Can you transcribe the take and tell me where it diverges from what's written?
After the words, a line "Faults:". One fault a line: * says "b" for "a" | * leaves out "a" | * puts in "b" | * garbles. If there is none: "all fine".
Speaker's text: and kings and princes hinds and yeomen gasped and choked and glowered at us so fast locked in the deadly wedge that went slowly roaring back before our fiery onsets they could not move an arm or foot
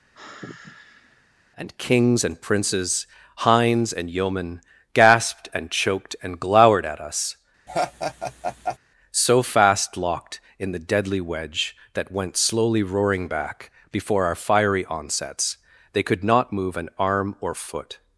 and kings and princes hinds and yeomen gasped and choked and glowered at us so fast locked in the deadly wedge that went slowly roaring back before our fiery onsets they could not move an arm or foot
Faults:
all fine